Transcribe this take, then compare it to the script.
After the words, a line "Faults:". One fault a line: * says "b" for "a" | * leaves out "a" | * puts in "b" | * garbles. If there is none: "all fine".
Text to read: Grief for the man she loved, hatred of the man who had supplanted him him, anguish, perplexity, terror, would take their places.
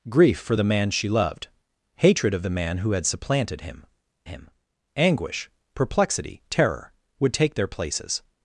Grief for the man she loved, hatred of the man who had supplanted him him, anguish, perplexity, terror, would take their places.
Faults:
all fine